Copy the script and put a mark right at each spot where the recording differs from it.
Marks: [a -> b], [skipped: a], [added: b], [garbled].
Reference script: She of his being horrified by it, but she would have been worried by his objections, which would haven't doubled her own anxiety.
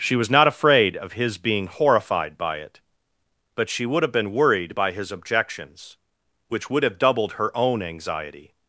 She [added: was not afraid] of his being horrified by it, but she would have been worried by his objections, which would [haven't -> have] doubled her own anxiety.